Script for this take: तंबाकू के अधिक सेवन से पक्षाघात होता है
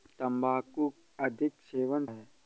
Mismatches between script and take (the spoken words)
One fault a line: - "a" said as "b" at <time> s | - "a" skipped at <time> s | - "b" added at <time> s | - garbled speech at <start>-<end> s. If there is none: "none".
- "के" skipped at 0.9 s
- "से पक्षाघात होता" skipped at 2.0 s